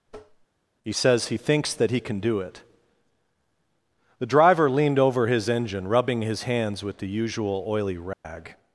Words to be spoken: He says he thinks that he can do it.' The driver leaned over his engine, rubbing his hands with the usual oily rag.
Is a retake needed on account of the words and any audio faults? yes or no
yes